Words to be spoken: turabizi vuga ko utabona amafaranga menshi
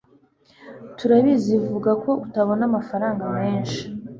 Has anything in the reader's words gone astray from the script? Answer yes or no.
no